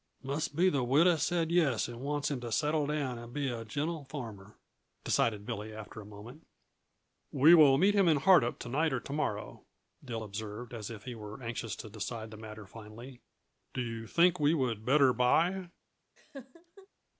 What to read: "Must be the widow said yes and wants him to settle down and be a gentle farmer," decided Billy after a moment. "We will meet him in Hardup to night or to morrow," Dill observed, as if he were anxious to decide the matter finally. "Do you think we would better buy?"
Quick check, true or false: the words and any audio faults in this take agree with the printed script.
false